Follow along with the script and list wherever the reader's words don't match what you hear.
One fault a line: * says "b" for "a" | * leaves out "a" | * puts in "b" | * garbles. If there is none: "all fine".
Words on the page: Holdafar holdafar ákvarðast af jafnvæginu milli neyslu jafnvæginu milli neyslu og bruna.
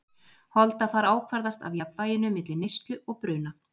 * leaves out "holdafar"
* leaves out "jafnvæginu milli neyslu"